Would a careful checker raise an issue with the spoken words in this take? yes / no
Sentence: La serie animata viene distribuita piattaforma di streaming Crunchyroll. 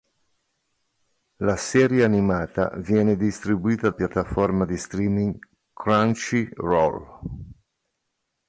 no